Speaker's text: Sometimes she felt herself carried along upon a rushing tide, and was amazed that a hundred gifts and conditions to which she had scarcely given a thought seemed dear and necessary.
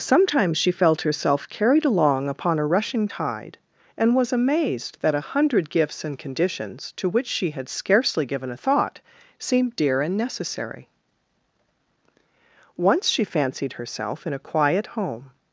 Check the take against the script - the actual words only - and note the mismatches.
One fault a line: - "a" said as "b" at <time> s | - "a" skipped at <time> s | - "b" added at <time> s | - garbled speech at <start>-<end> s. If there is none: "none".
- "Once she fancied herself in a quiet home" added at 12.8 s